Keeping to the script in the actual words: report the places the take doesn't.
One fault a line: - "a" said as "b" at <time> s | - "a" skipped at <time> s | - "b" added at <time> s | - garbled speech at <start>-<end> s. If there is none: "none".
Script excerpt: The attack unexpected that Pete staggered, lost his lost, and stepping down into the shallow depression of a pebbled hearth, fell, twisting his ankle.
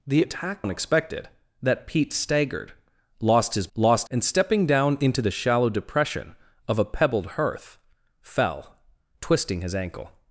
none